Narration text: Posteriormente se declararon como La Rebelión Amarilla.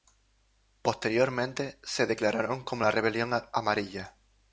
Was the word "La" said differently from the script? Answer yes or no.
no